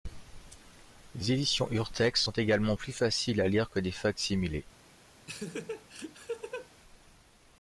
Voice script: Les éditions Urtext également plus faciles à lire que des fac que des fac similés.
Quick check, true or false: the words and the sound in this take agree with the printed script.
false